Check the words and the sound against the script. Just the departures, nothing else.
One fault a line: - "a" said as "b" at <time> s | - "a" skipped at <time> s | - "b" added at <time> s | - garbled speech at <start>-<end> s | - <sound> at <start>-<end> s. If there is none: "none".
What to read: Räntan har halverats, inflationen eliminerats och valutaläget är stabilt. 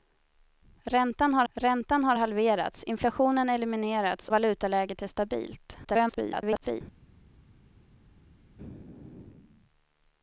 - "räntan har" added at 1.5 s
- "och" skipped at 4.3 s
- garbled speech at 5.8-6.8 s